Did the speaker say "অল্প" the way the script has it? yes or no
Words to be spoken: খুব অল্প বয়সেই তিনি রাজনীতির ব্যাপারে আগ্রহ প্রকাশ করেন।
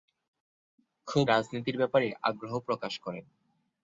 no